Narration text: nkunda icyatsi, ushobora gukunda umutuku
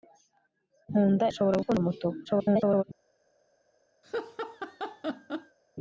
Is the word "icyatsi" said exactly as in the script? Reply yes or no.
no